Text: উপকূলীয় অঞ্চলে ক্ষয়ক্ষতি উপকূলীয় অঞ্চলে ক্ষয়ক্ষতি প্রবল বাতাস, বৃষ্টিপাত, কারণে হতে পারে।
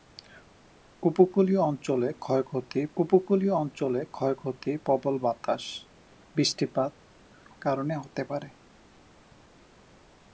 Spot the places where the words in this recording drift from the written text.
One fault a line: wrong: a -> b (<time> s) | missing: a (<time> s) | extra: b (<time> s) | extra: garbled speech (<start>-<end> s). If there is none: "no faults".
no faults